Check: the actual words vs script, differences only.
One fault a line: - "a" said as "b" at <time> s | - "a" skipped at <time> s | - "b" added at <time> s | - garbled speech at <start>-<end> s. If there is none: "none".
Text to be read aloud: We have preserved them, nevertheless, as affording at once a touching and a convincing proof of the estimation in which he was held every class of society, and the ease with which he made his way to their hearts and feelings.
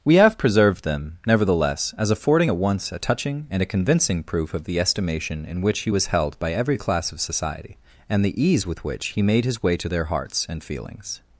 - "by" added at 6.4 s